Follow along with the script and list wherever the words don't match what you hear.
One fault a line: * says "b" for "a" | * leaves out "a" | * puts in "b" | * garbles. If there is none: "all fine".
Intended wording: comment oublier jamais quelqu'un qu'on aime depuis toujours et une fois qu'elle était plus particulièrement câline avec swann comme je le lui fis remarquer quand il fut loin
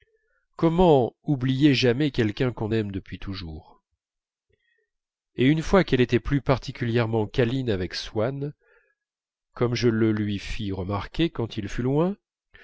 all fine